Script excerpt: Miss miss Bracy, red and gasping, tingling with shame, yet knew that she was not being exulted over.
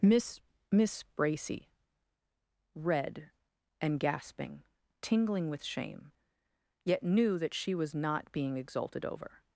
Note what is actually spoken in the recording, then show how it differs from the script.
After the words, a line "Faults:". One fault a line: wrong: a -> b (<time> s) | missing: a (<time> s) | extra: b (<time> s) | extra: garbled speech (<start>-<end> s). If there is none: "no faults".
Miss miss Bracy, red and gasping, tingling with shame, yet knew that she was not being exulted over.
Faults:
no faults